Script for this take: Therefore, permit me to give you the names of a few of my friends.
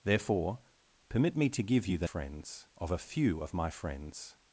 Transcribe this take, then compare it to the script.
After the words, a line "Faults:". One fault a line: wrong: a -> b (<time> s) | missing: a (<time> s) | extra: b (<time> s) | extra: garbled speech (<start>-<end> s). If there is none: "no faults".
Therefore, permit me to give you the friends of a few of my friends.
Faults:
wrong: names -> friends (2.0 s)